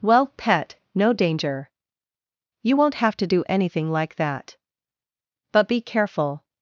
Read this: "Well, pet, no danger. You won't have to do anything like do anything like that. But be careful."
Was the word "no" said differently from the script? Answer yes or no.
no